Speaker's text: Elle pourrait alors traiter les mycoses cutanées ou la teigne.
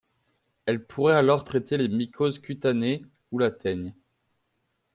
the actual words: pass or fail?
pass